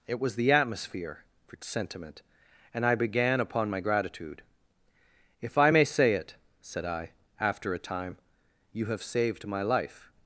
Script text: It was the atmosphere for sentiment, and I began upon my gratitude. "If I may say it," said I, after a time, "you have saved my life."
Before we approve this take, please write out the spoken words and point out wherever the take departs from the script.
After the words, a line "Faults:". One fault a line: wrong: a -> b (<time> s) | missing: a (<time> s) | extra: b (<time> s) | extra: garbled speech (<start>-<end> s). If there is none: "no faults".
It was the atmosphere for sentiment, and I began upon my gratitude. "If I may say it," said I, after a time, "you have saved my life."
Faults:
no faults